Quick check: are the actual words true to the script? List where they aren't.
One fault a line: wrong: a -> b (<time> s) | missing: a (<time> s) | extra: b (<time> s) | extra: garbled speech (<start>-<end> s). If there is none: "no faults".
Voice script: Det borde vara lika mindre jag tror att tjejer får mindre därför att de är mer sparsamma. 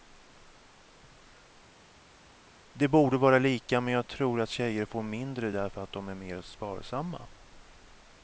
wrong: mindre -> men (3.8 s)